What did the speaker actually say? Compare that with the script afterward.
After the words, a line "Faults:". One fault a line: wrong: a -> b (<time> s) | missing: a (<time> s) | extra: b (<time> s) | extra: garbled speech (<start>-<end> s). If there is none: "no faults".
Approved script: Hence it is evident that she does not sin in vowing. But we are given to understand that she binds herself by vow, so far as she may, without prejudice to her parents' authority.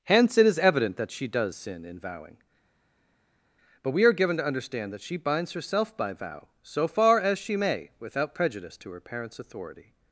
Hence it is evident that she does sin in vowing. But we are given to understand that she binds herself by vow, so far as she may, without prejudice to her parents' authority.
Faults:
missing: not (1.6 s)